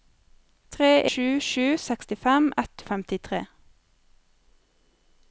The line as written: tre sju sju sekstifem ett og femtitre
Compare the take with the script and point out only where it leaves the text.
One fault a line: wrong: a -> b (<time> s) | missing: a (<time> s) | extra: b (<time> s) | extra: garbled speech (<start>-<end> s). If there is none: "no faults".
no faults